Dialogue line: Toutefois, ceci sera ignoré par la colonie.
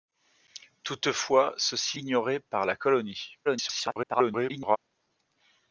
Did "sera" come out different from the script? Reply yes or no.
yes